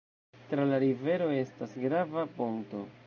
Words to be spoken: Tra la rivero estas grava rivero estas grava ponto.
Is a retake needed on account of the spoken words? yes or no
yes